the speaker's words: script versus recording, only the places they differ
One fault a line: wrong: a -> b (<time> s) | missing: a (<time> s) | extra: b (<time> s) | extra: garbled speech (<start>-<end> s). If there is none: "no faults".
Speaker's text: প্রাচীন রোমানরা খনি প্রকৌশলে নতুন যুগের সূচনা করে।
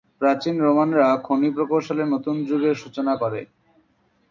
no faults